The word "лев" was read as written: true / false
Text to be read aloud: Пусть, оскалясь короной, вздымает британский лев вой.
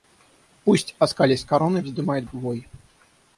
false